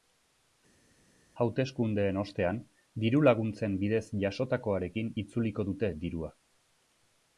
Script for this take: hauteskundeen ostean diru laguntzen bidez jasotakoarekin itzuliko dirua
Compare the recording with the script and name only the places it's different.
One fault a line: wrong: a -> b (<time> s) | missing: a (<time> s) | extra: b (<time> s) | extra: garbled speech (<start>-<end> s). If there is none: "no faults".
extra: dute (5.7 s)